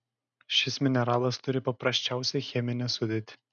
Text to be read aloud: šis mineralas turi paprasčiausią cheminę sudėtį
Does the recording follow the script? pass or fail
pass